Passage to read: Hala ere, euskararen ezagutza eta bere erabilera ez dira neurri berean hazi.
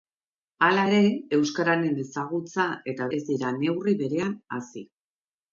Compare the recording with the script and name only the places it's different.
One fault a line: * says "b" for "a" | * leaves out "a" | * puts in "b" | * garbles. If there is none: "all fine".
* leaves out "bere erabilera"